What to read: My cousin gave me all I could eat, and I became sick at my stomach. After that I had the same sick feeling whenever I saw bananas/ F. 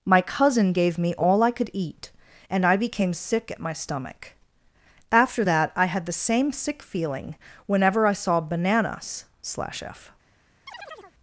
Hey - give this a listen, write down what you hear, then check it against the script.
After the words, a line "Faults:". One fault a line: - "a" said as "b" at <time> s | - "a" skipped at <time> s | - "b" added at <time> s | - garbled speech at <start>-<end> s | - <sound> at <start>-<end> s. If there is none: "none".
My cousin gave me all I could eat, and I became sick at my stomach. After that I had the same sick feeling whenever I saw bananas/ slash F.
Faults:
- "slash" added at 9.4 s
- chirp at 10.7-11.2 s